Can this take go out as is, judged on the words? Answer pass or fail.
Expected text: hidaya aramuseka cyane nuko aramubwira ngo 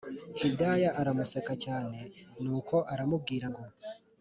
pass